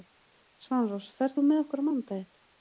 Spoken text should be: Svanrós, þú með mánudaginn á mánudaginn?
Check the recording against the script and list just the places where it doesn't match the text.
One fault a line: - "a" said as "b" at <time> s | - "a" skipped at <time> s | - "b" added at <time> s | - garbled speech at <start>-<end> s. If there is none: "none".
- "ferð" added at 1.2 s
- "mánudaginn" said as "okkur" at 1.6 s